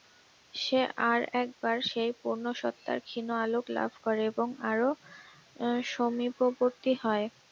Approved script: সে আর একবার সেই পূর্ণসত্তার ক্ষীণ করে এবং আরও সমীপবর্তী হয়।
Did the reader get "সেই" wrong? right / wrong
right